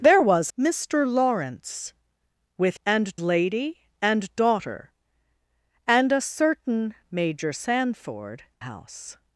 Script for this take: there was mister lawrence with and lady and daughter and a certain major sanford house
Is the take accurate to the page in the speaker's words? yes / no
yes